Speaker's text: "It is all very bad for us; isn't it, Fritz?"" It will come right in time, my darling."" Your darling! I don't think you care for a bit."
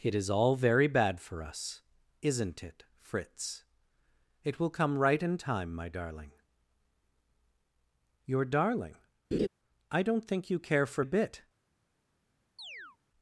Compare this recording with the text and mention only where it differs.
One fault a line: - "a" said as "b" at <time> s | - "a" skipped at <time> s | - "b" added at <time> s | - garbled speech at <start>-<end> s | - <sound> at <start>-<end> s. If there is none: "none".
- laugh at 9.3-9.5 s
- chirp at 12.6-13.0 s